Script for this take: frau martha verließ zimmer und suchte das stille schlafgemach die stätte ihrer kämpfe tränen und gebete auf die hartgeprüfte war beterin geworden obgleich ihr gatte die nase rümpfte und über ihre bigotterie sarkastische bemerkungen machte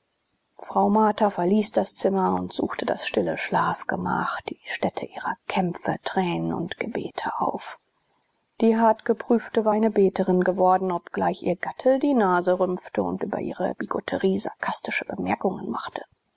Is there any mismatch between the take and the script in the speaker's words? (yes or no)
yes